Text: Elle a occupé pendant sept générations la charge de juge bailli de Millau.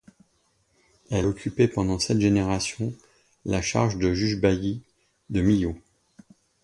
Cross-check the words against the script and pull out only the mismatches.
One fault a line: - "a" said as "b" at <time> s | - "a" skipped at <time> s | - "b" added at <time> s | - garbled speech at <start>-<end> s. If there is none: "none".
- "a" skipped at 1.3 s